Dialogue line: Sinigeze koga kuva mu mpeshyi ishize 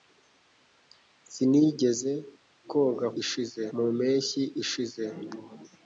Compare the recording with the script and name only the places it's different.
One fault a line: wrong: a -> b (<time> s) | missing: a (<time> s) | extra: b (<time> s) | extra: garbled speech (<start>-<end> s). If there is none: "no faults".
wrong: kuva -> ishize (3.2 s)